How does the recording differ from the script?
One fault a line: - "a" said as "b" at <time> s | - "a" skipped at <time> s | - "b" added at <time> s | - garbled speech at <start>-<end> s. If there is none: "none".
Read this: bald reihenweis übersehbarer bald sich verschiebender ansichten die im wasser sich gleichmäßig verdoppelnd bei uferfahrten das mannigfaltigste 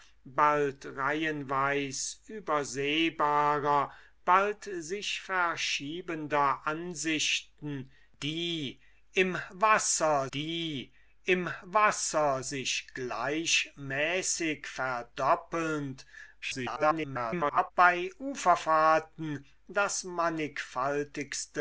- "die im wasser" added at 10.3 s
- garbled speech at 16.4-17.7 s